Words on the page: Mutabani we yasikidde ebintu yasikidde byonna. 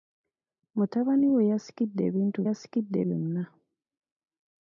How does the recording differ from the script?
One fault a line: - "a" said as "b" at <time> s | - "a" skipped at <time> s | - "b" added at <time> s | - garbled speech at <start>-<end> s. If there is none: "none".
none